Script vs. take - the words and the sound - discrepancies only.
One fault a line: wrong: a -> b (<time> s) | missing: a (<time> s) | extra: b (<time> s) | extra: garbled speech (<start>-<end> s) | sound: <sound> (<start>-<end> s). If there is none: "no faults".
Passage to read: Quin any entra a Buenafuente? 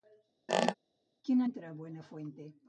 sound: squeak (0.5-0.7 s)
missing: any (1.4 s)